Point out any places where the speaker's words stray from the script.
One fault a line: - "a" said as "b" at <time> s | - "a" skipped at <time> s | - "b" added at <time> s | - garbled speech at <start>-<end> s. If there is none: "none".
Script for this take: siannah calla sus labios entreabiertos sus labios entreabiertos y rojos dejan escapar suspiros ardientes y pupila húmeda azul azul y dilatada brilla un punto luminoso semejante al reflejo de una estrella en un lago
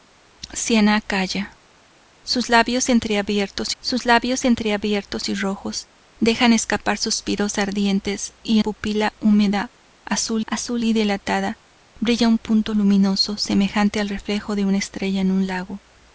none